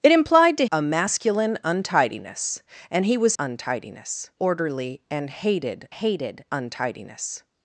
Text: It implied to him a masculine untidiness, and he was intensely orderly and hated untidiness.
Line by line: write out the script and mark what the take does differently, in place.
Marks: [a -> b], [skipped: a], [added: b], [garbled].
It implied to [skipped: him] a masculine untidiness, and he was [intensely -> untidiness] orderly and hated [added: hated] untidiness.